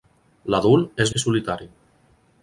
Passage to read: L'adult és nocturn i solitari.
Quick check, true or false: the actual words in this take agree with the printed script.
false